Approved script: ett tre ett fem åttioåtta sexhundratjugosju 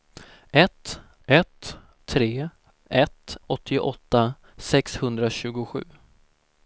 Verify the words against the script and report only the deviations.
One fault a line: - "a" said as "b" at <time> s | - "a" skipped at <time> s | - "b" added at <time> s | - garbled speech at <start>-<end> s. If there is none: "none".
- "ett" added at 1.3 s
- "fem" skipped at 3.4 s